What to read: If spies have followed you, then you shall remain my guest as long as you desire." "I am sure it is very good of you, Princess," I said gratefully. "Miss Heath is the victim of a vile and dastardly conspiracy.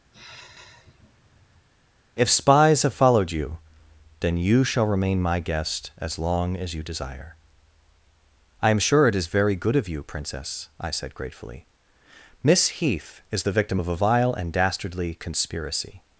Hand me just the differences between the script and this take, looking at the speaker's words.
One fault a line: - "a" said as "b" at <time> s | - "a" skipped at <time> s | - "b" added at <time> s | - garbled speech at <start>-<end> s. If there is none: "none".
none